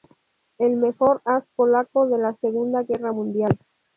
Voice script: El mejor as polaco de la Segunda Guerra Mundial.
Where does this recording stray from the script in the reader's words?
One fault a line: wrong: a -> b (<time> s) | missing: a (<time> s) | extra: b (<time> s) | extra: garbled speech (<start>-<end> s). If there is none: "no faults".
no faults